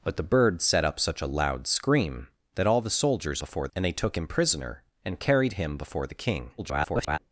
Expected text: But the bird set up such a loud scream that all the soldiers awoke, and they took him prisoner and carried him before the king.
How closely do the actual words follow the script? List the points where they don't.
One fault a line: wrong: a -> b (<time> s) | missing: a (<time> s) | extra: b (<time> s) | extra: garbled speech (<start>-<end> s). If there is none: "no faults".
wrong: awoke -> before (3.4 s)
extra: garbled speech (6.6-7.2 s)